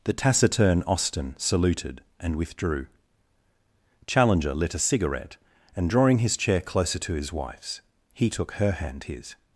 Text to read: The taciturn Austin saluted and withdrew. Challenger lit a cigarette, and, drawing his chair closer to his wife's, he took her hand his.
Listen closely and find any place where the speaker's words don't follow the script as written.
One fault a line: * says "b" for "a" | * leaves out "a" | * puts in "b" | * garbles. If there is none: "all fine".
all fine